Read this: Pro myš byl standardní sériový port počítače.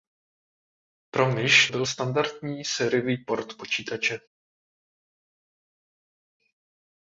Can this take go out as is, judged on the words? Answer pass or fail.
pass